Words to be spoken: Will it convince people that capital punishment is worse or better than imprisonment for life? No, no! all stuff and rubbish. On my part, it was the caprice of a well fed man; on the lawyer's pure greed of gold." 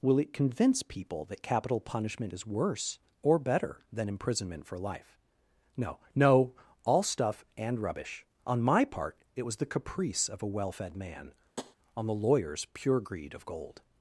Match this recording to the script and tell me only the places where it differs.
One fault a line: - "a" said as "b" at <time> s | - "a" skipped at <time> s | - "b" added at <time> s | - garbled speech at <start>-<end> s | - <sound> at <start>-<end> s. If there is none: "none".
- tap at 11.6-11.8 s